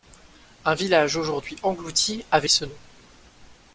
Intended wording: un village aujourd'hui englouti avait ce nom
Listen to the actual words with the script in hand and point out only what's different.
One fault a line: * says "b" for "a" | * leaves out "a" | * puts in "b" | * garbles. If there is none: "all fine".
all fine